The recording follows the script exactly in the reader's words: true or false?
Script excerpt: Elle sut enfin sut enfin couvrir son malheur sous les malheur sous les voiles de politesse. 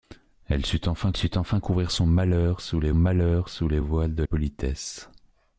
true